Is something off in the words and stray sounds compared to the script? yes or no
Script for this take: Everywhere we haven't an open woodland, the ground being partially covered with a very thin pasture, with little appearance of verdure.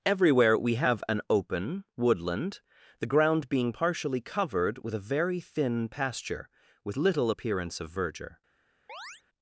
yes